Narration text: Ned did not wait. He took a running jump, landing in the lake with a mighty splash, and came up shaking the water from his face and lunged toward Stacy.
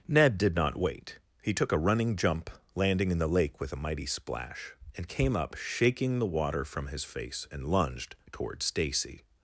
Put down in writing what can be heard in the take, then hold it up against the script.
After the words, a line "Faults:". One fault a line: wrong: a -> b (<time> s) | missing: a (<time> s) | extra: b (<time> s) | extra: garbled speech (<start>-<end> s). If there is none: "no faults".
Ned did not wait. He took a running jump, landing in the lake with a mighty splash, and came up shaking the water from his face and lunged toward Stacy.
Faults:
no faults